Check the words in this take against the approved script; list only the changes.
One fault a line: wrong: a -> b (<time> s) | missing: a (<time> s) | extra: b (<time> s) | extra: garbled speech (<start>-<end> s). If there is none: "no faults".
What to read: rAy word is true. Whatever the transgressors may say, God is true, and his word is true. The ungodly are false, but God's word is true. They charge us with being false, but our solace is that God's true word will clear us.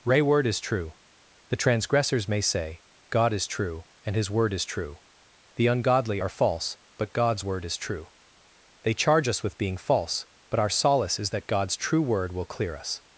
missing: Whatever (0.9 s)